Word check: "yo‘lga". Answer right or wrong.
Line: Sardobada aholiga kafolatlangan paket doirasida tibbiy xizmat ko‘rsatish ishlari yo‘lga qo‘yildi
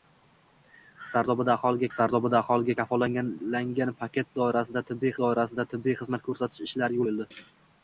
wrong